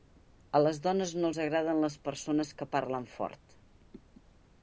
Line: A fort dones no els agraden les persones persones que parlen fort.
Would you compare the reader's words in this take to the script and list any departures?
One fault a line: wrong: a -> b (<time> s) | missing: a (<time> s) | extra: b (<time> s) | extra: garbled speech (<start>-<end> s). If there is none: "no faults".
wrong: fort -> les (0.6 s)
missing: persones (2.5 s)